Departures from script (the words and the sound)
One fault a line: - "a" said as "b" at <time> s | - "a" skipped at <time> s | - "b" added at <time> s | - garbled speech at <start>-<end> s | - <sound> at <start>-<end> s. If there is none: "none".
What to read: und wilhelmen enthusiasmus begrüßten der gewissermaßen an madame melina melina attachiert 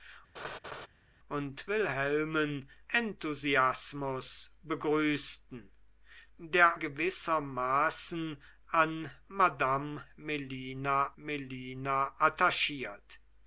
- laugh at 0.3-0.9 s